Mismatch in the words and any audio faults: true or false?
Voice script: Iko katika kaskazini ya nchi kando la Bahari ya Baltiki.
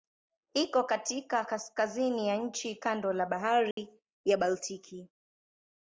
true